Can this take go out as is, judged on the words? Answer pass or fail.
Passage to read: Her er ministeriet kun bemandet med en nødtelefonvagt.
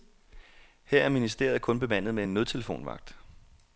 pass